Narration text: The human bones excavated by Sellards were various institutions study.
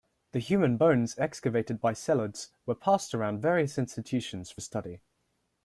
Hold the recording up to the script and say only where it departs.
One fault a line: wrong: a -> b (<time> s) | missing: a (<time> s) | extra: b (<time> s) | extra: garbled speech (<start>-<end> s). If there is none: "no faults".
extra: passed around (2.7 s)
extra: for (4.5 s)